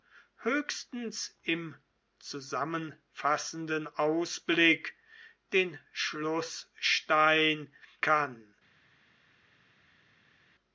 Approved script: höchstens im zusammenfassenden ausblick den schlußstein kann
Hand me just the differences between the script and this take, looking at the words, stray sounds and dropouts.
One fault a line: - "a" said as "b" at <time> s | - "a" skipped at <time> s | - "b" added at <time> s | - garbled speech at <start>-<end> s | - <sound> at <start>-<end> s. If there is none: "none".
none